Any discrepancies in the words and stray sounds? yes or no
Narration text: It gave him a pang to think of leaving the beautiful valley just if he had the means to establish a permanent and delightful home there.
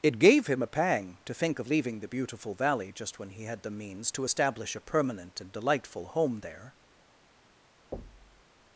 yes